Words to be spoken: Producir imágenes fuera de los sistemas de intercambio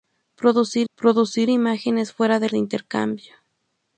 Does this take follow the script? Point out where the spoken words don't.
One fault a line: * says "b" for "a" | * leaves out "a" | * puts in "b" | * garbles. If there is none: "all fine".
* puts in "producir"
* leaves out "los sistemas"